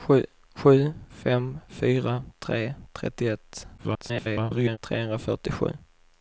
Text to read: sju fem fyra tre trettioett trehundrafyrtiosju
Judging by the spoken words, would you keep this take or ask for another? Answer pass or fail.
fail